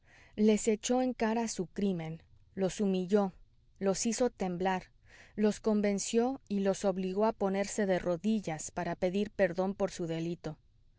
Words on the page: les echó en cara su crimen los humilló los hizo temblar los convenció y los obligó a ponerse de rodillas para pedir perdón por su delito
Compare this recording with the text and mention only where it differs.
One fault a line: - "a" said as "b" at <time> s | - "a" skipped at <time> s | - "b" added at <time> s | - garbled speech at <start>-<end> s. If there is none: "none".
none